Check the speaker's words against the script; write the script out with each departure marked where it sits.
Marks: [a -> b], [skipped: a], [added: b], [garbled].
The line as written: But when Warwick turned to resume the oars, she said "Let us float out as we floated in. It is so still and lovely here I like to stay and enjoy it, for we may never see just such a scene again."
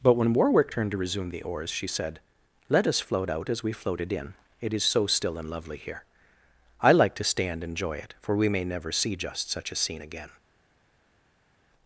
But when Warwick turned to resume the oars, she said "Let us float out as we floated in. It is so still and lovely here I like to stay and enjoy it, for we may never see just such a scene again."